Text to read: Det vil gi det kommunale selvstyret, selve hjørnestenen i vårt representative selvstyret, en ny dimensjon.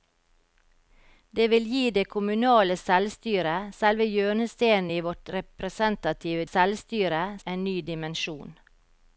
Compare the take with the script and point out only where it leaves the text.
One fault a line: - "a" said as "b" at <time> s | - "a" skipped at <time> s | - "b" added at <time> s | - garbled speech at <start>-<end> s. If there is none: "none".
none